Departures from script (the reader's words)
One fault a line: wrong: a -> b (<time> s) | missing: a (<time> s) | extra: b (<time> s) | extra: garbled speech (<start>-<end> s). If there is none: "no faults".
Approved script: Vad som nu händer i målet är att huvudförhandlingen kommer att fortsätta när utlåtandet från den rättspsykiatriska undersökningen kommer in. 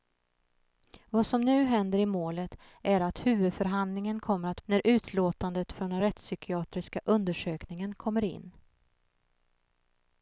missing: fortsätta (4.6 s)